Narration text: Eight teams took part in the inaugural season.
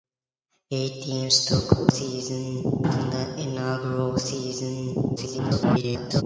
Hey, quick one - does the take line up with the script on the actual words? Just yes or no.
no